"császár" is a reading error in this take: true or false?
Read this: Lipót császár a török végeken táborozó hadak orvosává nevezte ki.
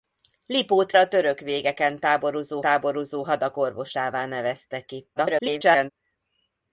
true